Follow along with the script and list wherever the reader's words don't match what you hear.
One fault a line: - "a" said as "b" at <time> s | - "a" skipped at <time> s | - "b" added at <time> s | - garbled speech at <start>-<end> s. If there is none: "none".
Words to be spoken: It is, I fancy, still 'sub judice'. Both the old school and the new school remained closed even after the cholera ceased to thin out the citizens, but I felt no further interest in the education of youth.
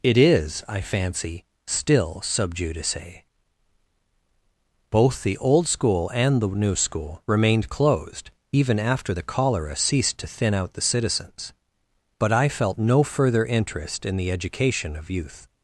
none